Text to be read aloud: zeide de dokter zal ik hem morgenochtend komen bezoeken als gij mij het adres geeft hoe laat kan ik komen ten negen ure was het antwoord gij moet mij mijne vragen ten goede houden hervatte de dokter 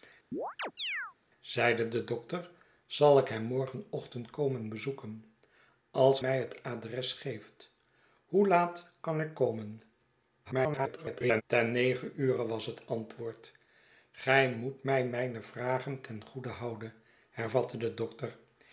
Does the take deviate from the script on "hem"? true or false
false